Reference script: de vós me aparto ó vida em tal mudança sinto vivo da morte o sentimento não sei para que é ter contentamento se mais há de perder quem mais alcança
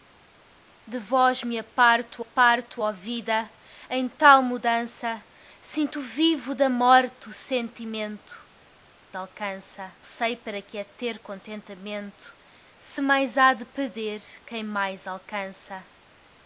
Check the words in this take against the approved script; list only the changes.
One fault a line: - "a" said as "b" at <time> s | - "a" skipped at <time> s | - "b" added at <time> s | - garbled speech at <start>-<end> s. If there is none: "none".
- "aparto" added at 2.2 s
- "não" said as "alcança" at 9.1 s